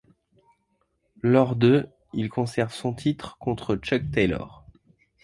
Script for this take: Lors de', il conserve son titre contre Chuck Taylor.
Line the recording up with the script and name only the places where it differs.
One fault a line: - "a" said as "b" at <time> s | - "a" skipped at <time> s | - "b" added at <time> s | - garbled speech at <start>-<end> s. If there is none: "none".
none